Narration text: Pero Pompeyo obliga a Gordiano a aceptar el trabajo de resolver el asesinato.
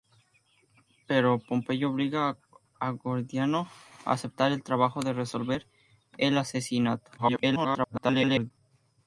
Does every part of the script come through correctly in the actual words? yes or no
no